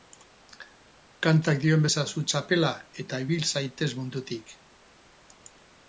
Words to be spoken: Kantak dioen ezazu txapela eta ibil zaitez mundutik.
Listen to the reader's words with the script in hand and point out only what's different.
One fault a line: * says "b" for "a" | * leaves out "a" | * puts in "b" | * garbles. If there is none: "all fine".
all fine